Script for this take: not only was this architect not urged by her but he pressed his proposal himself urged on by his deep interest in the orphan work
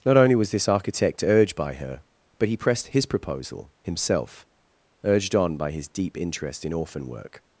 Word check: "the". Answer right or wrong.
wrong